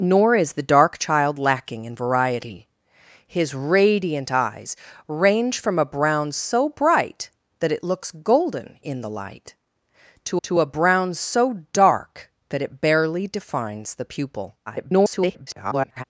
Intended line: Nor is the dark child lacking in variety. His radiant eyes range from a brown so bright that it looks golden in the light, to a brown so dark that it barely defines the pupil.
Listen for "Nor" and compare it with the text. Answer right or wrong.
right